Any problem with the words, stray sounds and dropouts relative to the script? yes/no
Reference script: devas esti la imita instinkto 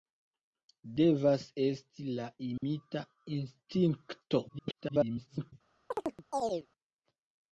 yes